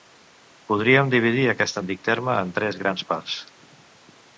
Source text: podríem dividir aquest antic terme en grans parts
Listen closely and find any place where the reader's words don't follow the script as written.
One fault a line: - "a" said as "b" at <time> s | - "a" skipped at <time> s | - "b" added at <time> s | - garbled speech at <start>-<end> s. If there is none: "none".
- "tres" added at 2.6 s